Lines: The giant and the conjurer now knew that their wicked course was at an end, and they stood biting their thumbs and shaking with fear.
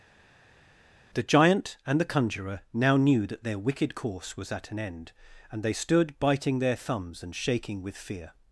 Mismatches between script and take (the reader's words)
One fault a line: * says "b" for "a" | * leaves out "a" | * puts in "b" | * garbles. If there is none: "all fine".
all fine